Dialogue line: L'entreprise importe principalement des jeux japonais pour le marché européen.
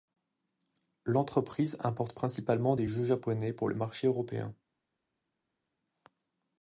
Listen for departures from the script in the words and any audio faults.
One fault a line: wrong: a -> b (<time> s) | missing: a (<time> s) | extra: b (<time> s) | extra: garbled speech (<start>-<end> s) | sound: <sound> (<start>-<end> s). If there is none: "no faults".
no faults